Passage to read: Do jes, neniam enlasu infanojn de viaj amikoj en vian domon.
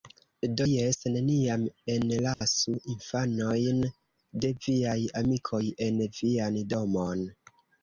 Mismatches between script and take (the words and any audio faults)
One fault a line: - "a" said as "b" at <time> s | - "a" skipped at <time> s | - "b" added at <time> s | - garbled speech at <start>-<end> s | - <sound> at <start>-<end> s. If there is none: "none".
- dropout at 2.3-2.4 s